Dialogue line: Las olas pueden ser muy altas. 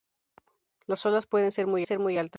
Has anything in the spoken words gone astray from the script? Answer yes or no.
yes